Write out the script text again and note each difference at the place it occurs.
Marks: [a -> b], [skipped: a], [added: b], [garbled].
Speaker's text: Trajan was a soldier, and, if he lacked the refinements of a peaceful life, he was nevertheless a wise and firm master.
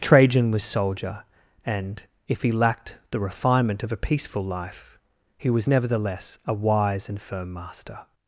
Trajan was [skipped: a] soldier, and, if he lacked the [refinements -> refinement] of a peaceful life, he was nevertheless a wise and firm master.